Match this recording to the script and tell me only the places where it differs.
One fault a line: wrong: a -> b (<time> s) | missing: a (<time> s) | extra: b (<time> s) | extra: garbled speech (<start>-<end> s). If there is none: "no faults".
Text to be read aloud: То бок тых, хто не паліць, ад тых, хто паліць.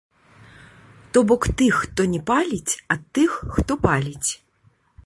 no faults